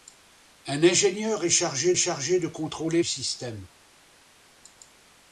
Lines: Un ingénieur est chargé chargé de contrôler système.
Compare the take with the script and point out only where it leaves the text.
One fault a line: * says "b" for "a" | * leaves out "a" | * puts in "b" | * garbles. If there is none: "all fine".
all fine